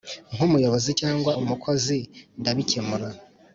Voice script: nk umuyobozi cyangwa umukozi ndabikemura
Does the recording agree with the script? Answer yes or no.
yes